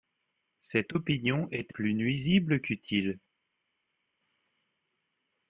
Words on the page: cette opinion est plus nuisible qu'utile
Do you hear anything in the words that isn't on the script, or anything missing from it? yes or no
no